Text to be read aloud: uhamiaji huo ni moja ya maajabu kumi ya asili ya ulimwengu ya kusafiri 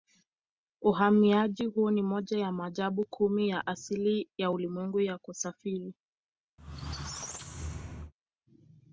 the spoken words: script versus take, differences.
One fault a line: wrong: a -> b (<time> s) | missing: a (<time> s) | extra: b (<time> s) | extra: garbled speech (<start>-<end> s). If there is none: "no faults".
no faults